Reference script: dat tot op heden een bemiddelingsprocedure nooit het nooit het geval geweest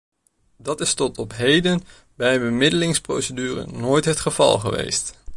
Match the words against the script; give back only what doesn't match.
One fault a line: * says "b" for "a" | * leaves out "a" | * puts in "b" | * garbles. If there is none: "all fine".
* puts in "is"
* puts in "bij"
* leaves out "nooit het"